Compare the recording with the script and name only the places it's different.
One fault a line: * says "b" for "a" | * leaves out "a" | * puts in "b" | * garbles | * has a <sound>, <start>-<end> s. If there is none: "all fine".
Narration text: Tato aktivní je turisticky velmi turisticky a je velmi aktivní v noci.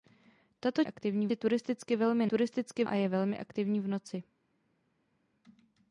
all fine